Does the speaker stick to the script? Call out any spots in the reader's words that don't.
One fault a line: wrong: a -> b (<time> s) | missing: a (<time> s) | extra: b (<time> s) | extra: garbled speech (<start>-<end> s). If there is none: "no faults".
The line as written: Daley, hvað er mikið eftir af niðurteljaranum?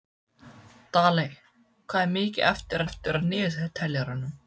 extra: eftir (2.9 s)